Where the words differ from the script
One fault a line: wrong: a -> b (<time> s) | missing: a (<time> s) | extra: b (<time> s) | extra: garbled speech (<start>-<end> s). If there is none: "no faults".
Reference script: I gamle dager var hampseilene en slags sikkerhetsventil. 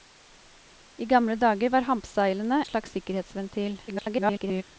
missing: en (2.6 s)
extra: garbled speech (3.9-4.6 s)